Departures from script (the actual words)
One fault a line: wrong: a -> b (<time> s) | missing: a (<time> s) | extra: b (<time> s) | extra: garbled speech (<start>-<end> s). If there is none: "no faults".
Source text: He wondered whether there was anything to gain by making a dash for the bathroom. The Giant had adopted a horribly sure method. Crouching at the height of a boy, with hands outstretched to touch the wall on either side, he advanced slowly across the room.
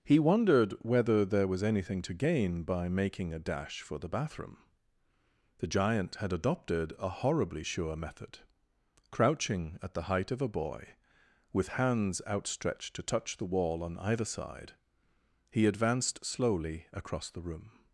no faults